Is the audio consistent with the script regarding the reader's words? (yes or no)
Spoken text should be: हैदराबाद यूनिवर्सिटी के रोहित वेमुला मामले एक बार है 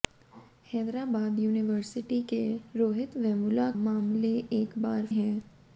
yes